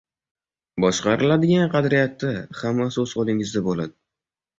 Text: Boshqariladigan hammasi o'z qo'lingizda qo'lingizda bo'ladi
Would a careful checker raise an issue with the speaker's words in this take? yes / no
yes